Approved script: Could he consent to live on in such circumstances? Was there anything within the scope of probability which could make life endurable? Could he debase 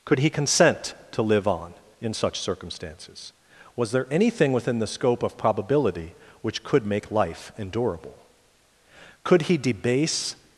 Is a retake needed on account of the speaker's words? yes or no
no